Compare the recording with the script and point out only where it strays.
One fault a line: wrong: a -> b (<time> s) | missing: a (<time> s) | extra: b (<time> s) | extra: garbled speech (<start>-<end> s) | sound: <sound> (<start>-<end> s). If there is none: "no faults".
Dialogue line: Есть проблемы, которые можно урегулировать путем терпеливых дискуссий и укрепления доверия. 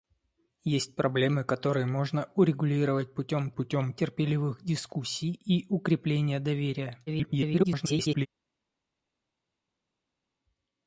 extra: путем (3.5 s)
extra: garbled speech (7.1-8.3 s)